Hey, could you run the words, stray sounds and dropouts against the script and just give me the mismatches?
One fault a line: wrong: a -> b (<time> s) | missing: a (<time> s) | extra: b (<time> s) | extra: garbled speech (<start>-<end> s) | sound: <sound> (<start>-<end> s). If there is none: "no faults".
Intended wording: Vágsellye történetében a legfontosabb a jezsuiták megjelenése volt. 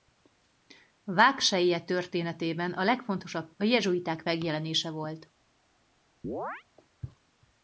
sound: chirp (6.2-6.6 s)